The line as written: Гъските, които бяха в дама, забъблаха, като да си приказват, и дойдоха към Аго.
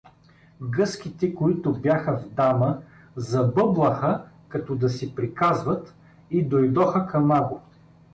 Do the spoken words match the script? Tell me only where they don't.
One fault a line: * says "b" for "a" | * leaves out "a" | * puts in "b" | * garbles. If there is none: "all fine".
all fine